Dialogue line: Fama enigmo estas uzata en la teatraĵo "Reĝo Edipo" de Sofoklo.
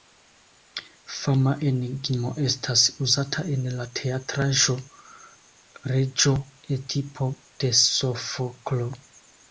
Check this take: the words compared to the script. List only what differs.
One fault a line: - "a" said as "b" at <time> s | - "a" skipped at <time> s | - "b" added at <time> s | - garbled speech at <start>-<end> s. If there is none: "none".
none